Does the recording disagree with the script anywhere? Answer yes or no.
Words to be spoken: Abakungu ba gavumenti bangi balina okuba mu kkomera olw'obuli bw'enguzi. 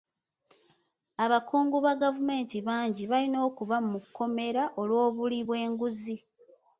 no